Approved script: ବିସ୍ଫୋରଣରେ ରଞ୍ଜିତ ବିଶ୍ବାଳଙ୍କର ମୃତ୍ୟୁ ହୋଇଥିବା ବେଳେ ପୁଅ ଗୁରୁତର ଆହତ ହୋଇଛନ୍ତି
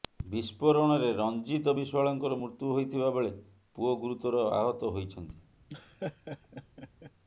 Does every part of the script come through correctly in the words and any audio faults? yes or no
no